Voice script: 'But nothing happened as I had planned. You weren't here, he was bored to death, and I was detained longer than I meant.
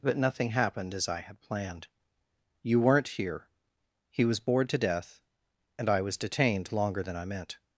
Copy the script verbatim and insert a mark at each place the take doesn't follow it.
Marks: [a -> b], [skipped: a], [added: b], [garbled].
'But nothing happened as I had planned. You weren't here, he was bored to death, and I was detained longer than I meant.